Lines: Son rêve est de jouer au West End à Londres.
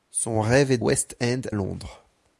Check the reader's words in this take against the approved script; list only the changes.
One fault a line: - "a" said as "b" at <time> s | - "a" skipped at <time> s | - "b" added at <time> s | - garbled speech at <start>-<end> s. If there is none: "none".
- "de jouer au" skipped at 0.8 s
- "à" skipped at 1.4 s